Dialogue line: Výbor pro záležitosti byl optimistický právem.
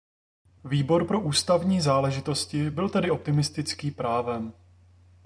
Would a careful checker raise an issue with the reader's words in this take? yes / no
yes